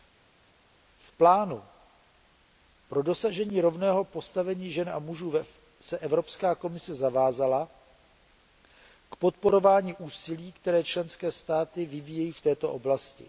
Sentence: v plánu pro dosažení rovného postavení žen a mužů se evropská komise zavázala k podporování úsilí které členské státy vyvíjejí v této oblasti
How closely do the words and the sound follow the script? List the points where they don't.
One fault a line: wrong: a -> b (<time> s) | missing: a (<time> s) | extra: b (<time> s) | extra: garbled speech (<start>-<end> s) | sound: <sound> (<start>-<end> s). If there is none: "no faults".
no faults